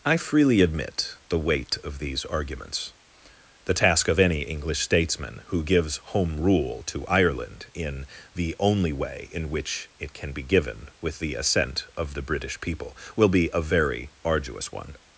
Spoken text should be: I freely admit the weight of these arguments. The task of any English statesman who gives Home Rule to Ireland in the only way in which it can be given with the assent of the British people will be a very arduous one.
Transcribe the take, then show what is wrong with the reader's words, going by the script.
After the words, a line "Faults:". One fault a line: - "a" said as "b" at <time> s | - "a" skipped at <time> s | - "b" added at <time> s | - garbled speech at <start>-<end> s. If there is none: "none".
I freely admit the weight of these arguments. The task of any English statesman who gives Home Rule to Ireland in the only way in which it can be given with the assent of the British people will be a very arduous one.
Faults:
none